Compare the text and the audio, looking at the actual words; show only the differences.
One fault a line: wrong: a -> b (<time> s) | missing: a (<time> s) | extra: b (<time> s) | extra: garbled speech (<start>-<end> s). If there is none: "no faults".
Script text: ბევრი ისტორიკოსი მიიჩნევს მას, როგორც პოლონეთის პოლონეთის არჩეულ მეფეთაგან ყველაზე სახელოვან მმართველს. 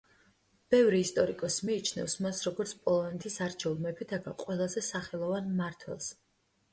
missing: პოლონეთის (3.4 s)